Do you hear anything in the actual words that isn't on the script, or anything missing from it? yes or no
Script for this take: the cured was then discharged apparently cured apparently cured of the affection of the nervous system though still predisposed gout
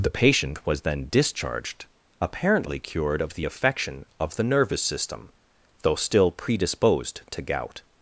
yes